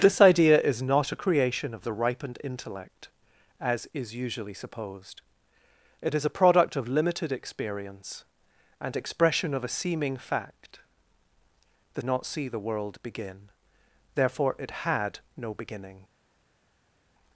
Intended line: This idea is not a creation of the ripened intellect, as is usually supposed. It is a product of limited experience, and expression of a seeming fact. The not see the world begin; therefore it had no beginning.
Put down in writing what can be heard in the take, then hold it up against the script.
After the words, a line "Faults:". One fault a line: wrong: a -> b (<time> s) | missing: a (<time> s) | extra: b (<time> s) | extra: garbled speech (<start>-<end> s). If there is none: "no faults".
This idea is not a creation of the ripened intellect, as is usually supposed. It is a product of limited experience, and expression of a seeming fact. The not see the world begin; therefore it had no beginning.
Faults:
no faults